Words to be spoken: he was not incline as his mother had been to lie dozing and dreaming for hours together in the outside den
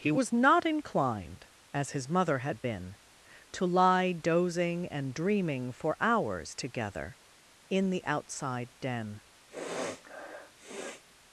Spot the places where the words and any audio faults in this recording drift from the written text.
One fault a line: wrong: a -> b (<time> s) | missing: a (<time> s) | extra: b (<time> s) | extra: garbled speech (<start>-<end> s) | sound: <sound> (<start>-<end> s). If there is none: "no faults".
wrong: incline -> inclined (0.7 s)
sound: sniff (9.5-11.0 s)